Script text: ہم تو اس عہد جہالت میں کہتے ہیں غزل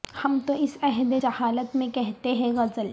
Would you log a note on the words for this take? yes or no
no